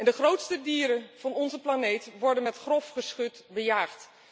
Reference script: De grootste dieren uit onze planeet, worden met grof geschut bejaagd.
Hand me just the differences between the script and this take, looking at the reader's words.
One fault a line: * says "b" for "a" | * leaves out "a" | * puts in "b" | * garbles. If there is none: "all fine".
* says "van" for "uit"